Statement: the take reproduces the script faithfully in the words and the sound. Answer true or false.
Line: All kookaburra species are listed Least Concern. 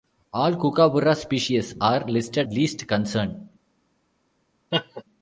false